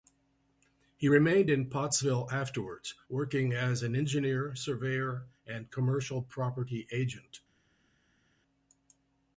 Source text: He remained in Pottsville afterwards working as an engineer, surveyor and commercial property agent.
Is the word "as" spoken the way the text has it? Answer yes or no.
yes